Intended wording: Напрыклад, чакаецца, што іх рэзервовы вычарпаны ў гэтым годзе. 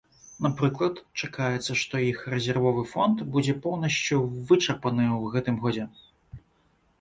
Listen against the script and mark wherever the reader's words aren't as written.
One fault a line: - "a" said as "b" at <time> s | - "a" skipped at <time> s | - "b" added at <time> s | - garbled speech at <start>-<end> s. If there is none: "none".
- "фонд будзе поўнасцю" added at 2.9 s